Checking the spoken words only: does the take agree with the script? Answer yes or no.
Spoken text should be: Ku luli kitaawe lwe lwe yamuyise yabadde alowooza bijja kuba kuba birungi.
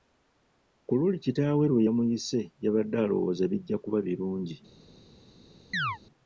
no